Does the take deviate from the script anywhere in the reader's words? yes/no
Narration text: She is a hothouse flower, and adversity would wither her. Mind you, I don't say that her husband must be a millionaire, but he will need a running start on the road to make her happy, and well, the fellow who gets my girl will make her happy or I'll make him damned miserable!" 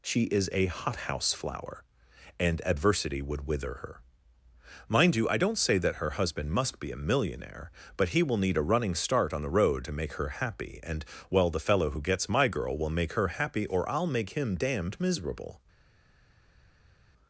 no